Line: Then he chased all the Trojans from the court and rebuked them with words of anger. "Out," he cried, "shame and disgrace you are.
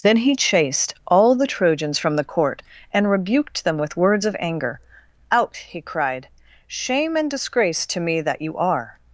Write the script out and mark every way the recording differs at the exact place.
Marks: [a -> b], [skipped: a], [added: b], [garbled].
Then he chased all the Trojans from the court and rebuked them with words of anger. "Out," he cried, "shame and disgrace [added: to me that] you are.